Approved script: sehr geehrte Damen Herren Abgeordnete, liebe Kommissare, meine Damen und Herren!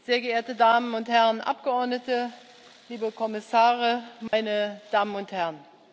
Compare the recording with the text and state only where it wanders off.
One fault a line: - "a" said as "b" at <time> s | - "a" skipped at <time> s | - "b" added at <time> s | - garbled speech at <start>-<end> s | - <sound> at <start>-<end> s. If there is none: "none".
- "und" added at 0.9 s
- dropout at 4.3-4.3 s